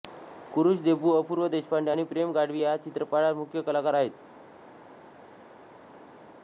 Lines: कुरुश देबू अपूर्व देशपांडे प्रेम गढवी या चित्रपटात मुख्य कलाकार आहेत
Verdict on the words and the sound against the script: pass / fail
fail